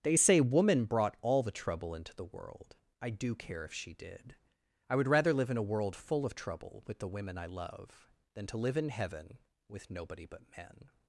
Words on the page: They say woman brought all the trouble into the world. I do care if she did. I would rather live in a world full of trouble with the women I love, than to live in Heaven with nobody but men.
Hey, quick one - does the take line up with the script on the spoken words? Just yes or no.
yes